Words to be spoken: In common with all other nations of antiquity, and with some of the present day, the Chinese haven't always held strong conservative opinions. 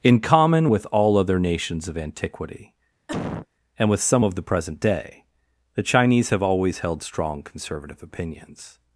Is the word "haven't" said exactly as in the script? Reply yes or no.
no